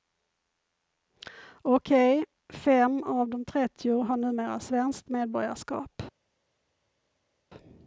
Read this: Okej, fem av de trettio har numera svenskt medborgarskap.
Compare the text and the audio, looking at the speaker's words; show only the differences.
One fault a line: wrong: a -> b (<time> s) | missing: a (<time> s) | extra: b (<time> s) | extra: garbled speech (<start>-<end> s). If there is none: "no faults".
no faults